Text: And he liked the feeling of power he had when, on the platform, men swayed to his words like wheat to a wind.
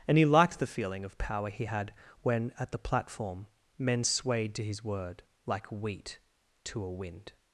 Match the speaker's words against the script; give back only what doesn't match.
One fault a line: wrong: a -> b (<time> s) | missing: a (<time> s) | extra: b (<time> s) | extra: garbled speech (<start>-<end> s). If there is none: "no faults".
wrong: on -> at (2.6 s)
wrong: words -> word (4.8 s)